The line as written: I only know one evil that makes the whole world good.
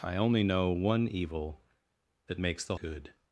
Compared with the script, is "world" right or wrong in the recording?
wrong